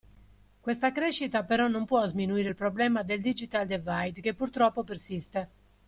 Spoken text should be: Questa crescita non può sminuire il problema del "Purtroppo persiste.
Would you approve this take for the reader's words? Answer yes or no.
no